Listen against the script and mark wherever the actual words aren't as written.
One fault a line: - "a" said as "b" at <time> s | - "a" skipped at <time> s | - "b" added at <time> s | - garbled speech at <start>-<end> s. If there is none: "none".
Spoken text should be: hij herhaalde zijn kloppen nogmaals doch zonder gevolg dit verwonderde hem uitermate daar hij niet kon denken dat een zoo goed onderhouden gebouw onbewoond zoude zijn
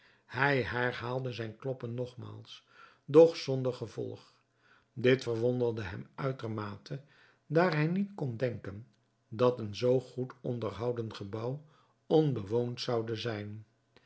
none